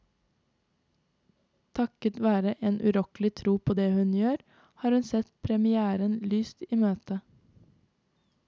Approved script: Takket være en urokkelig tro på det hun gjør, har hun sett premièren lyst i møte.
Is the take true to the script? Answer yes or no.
yes